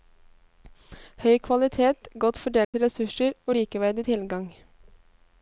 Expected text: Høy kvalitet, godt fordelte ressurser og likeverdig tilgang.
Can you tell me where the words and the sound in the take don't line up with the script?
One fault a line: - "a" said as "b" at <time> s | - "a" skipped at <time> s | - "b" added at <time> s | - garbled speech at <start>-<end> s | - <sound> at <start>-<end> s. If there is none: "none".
- dropout at 2.6-2.7 s